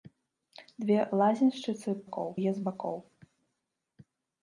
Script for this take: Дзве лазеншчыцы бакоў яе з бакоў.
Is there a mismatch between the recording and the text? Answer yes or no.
no